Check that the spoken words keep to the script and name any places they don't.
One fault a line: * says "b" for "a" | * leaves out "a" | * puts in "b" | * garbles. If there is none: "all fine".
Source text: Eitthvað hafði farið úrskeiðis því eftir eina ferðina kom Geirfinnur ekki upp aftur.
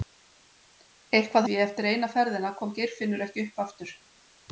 * leaves out "hafði farið úrskeiðis"